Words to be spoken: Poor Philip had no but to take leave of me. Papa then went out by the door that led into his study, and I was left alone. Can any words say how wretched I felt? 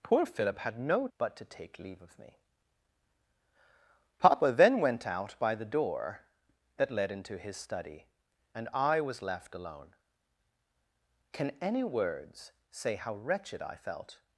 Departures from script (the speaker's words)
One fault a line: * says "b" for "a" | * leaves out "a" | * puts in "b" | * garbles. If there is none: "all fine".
all fine